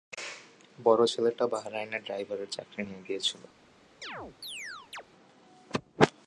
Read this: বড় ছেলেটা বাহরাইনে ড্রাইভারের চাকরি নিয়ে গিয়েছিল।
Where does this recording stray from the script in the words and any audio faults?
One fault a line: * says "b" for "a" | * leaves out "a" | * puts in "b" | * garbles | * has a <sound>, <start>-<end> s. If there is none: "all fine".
* has a chirp, 4.0-5.0 s